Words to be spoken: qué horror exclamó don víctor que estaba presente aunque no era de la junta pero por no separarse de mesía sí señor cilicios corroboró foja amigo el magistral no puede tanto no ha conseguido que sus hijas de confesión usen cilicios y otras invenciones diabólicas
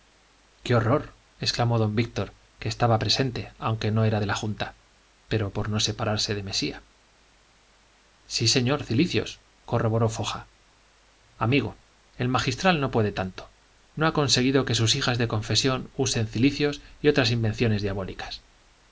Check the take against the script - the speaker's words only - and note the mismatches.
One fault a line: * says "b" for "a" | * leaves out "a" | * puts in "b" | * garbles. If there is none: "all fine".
all fine